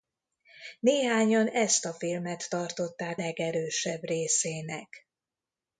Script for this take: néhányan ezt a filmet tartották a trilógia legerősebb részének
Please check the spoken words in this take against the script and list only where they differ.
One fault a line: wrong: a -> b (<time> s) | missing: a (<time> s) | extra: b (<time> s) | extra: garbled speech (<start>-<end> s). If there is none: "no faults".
missing: a trilógia (3.2 s)